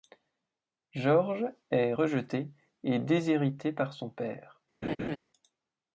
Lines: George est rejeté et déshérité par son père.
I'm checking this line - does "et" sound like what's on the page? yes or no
yes